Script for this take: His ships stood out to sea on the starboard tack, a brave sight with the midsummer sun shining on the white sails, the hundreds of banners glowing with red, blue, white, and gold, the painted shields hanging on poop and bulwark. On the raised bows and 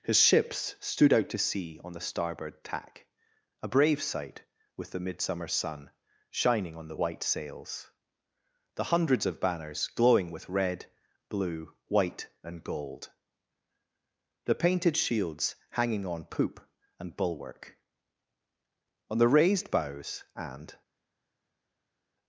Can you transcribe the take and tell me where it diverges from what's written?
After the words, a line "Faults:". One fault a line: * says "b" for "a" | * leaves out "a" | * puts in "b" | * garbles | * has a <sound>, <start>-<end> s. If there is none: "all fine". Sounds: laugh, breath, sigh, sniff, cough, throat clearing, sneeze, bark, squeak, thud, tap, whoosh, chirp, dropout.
His ships stood out to sea on the starboard tack, a brave sight with the midsummer sun shining on the white sails, the hundreds of banners glowing with red, blue, white, and gold, the painted shields hanging on poop and bulwark. On the raised bows and
Faults:
all fine